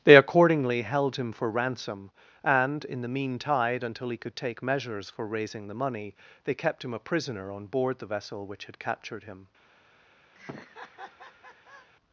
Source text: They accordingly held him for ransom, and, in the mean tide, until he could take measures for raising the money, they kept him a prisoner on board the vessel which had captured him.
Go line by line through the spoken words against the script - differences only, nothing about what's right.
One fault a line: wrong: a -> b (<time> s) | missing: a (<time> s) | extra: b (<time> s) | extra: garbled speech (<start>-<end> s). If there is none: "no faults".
no faults